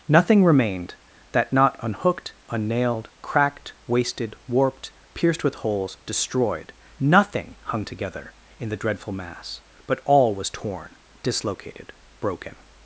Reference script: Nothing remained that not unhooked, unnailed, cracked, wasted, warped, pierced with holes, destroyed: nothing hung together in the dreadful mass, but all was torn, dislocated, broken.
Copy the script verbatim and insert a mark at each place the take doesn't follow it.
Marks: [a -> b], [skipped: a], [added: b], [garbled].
Nothing remained that not unhooked, unnailed, cracked, wasted, warped, pierced with holes, destroyed: nothing hung together in the dreadful mass, but all was torn, dislocated, broken.